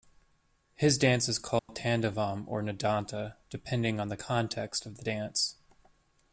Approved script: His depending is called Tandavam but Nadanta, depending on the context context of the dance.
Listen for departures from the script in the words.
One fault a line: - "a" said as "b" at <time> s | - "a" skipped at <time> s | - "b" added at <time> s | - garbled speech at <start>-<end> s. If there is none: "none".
- "depending" said as "dance" at 1.0 s
- "but" said as "or" at 2.5 s
- "context" skipped at 4.9 s